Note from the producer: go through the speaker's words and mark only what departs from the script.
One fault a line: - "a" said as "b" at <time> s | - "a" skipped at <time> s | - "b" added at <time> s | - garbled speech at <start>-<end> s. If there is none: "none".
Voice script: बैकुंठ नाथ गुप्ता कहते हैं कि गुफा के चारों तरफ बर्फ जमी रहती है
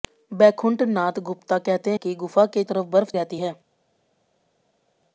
- "हैं" skipped at 1.9 s
- "चारों" skipped at 2.6 s
- "जमी" skipped at 3.1 s